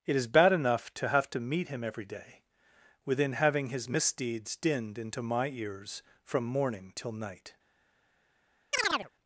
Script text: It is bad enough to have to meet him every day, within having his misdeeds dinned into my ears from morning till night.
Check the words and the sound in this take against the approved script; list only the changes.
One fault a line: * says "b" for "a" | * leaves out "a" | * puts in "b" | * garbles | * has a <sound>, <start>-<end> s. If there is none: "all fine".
* has a chirp, 8.7-9.1 s